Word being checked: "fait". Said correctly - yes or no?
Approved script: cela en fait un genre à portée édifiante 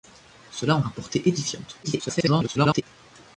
no